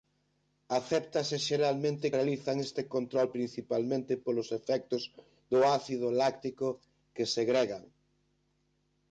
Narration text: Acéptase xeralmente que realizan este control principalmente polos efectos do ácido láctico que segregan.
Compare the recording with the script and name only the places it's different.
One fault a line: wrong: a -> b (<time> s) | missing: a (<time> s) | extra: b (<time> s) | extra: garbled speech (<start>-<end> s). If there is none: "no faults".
missing: que (2.1 s)